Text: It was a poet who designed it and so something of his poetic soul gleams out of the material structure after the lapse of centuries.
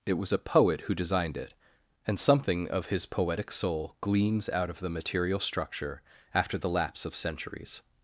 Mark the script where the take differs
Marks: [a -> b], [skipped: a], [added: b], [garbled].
It was a poet who designed it and [skipped: so] something of his poetic soul gleams out of the material structure after the lapse of centuries.